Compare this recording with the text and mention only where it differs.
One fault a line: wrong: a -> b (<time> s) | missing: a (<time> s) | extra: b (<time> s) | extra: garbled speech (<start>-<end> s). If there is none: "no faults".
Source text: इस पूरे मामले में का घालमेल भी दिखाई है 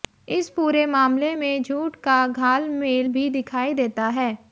extra: झूठ (1.6 s)
extra: देता (3.7 s)